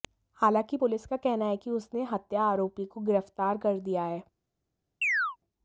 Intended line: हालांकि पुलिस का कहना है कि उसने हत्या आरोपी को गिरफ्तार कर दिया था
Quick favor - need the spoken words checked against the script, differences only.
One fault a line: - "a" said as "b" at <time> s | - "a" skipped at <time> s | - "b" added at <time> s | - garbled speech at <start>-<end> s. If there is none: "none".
- "था" said as "है" at 4.0 s